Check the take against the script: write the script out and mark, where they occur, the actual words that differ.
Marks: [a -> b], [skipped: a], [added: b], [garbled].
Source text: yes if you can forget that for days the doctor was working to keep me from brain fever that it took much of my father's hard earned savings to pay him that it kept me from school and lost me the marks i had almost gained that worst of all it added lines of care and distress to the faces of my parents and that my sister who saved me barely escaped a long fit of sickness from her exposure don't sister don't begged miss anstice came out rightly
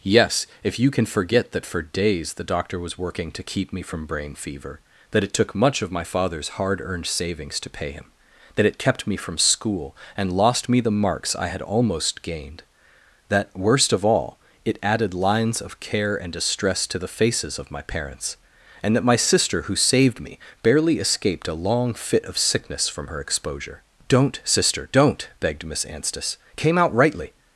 yes if you can forget that for days the doctor was working to keep me from brain fever that it took much of my father's hard earned savings to pay him that it kept me from school and lost me the marks i had almost gained that worst of all it added lines of care and distress to the faces of my parents and that my sister who saved me barely escaped a long fit of sickness from her exposure don't sister don't begged miss anstice came out rightly